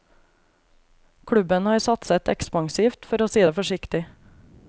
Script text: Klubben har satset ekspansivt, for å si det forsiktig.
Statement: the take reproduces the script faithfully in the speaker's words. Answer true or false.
true